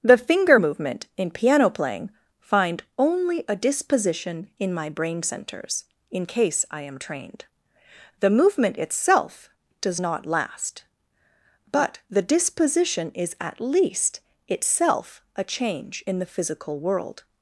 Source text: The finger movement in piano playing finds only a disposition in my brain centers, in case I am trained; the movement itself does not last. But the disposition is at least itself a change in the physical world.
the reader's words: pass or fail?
fail